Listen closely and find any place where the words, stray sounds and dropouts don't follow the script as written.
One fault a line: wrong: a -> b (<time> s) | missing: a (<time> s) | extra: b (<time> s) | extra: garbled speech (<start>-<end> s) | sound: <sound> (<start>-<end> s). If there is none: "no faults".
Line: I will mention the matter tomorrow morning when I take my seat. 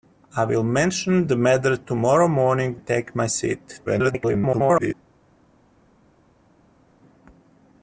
missing: when I (2.8 s)
extra: garbled speech (3.9-4.9 s)